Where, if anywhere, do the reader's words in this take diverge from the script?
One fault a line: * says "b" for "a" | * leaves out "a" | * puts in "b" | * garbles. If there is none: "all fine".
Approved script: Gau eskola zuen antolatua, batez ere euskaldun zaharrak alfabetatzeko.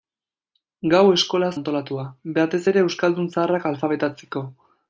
* leaves out "zuen"